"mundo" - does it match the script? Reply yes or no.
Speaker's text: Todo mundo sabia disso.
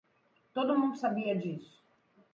yes